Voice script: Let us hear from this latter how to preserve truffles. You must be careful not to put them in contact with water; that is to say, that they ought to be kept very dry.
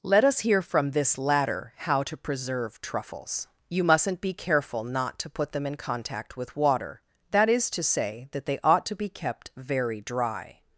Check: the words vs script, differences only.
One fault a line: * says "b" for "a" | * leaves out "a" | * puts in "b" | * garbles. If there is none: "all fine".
* says "mustn't" for "must"